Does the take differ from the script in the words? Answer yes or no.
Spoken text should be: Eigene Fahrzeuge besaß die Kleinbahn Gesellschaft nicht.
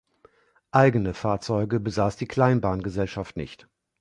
no